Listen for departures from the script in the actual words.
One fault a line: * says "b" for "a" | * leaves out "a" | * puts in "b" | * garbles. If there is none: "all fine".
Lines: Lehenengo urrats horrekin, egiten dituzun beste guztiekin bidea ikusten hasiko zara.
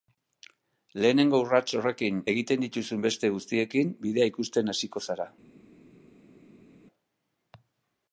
all fine